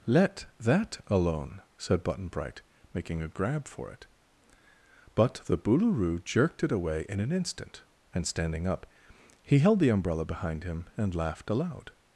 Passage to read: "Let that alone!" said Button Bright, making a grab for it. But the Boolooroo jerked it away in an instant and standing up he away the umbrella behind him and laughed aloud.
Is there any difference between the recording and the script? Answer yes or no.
yes